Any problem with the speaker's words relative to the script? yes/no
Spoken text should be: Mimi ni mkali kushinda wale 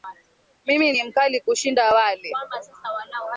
no